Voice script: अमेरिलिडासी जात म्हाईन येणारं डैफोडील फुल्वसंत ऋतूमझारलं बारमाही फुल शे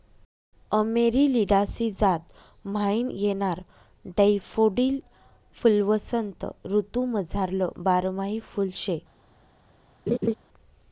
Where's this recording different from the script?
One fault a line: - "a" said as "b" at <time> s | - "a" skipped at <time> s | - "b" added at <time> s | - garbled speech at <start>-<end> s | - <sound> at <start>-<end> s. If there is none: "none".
- laugh at 10.1-10.3 s